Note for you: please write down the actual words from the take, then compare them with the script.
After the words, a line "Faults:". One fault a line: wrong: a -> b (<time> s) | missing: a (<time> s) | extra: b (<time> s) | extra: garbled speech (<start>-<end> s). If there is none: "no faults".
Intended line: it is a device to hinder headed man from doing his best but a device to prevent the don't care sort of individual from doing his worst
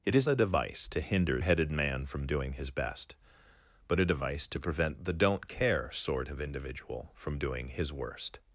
it is a device to hinder headed man from doing his best but a device to prevent the don't care sort of individual from doing his worst
Faults:
no faults